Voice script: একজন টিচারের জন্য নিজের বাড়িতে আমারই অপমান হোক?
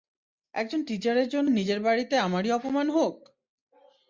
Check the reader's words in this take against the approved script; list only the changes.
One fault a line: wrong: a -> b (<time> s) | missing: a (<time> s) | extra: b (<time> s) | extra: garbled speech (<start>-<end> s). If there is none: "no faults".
no faults